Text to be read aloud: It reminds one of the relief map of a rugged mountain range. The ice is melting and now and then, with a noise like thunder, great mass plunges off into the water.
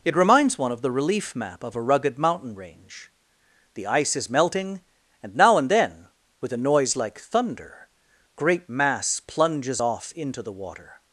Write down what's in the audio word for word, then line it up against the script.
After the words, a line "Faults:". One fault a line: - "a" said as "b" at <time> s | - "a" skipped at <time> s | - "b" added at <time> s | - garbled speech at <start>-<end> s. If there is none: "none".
It reminds one of the relief map of a rugged mountain range. The ice is melting and now and then, with a noise like thunder, great mass plunges off into the water.
Faults:
none